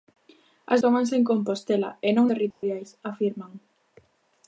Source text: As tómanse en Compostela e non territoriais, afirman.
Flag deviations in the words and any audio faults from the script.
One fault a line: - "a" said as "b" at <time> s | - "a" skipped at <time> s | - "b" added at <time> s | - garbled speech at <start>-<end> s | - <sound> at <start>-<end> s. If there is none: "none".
- dropout at 2.5-2.6 s